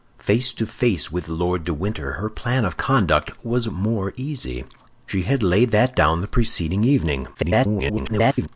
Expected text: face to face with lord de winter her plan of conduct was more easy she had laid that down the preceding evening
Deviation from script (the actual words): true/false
true